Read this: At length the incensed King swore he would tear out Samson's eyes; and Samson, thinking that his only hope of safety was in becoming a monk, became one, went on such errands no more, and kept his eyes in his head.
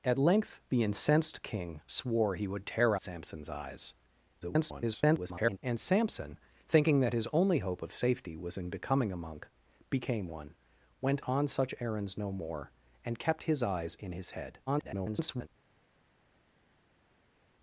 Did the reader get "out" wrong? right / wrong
wrong